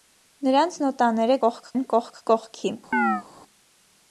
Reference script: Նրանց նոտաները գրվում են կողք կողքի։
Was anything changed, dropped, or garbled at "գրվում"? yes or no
yes